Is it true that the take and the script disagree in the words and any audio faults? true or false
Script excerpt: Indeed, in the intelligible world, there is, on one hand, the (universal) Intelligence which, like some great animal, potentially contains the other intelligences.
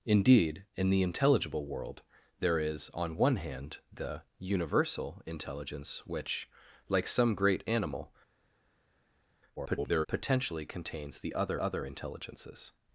true